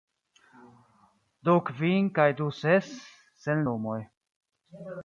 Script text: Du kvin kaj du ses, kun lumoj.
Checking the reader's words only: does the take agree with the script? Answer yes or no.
no